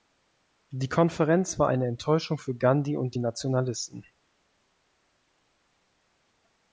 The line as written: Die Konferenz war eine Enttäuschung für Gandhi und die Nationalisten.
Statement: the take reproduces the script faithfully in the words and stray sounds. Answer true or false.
true